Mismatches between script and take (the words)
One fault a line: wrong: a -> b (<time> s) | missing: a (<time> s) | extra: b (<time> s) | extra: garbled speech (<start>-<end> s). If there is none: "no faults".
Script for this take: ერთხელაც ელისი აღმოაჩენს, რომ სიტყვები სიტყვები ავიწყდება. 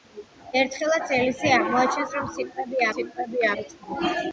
no faults